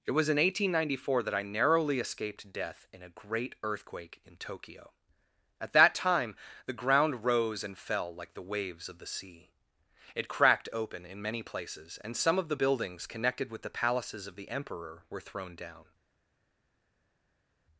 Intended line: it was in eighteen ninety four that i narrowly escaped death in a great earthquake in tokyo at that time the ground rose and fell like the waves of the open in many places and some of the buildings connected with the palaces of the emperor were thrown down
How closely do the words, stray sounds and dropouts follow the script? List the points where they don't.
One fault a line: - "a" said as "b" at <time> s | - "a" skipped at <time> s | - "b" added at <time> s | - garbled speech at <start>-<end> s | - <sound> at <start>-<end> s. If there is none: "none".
- "sea it cracked" added at 9.1 s